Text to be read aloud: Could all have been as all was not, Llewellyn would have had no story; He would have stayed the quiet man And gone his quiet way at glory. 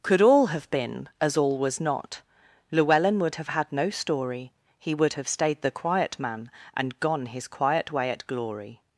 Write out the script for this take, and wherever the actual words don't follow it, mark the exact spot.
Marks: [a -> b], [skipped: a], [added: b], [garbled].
Could all have been as all was not, Llewellyn would have had no story; He would have stayed the quiet man And gone his quiet way at glory.